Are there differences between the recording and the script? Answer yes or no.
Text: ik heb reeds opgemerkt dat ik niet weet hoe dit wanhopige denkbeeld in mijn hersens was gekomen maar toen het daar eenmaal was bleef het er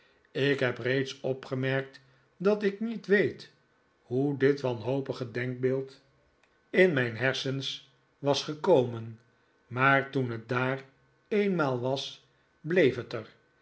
no